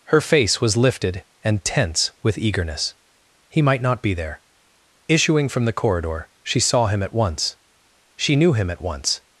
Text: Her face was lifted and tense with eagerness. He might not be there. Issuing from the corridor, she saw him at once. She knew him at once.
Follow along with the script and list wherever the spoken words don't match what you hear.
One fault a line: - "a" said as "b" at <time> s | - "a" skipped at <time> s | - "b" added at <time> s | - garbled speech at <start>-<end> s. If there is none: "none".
none